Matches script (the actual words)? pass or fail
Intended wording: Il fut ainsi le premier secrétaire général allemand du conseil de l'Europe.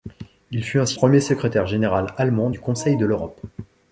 fail